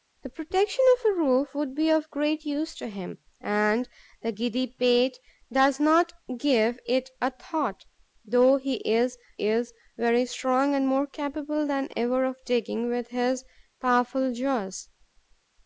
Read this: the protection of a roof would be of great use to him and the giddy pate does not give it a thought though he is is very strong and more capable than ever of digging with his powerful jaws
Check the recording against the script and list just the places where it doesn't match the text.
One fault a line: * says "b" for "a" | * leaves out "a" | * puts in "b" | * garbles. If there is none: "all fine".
all fine